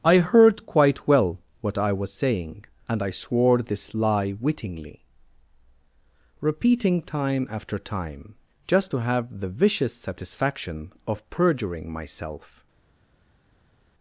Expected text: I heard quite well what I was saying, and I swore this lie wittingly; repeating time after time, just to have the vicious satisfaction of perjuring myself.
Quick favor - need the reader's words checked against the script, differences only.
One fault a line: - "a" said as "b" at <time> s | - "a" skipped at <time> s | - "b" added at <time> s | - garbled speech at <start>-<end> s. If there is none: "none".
none